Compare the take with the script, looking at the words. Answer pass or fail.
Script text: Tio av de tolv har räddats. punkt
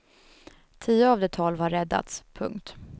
pass